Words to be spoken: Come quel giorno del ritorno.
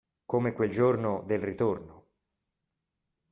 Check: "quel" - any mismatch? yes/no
no